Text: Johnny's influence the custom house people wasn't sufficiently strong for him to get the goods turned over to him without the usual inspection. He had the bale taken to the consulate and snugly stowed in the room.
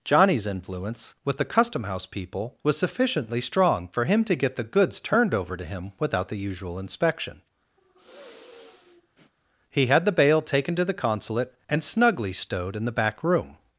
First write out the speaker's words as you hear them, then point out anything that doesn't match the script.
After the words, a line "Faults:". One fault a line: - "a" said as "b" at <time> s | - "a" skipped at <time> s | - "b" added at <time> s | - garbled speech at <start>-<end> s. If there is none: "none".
Johnny's influence with the custom house people was sufficiently strong for him to get the goods turned over to him without the usual inspection. He had the bale taken to the consulate and snugly stowed in the back room.
Faults:
- "with" added at 1.2 s
- "wasn't" said as "was" at 2.6 s
- "back" added at 12.9 s